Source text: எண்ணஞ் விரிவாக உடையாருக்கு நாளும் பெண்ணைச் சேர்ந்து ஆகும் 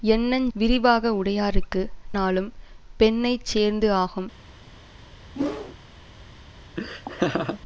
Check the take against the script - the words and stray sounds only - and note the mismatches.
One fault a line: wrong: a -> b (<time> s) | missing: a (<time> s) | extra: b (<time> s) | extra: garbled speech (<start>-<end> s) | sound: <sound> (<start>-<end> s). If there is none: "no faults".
sound: whoosh (5.3-5.8 s)
sound: laugh (6.8-7.6 s)